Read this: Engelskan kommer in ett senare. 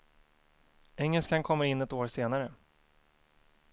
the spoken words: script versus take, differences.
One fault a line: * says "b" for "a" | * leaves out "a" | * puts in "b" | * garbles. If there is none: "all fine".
* puts in "år"